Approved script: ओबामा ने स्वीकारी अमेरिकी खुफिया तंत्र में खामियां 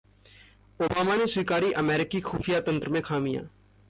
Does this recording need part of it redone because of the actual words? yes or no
no